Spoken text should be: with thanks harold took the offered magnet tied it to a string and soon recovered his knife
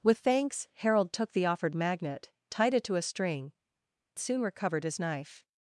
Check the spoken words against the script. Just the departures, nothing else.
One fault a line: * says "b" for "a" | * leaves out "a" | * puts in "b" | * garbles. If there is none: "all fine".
* leaves out "and"